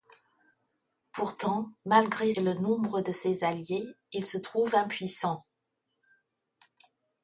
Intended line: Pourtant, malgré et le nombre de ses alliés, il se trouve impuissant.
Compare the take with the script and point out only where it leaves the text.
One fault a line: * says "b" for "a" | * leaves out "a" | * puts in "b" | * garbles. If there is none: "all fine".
all fine